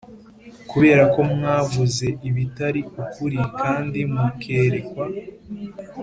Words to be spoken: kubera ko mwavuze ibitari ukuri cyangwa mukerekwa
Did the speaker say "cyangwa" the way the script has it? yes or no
no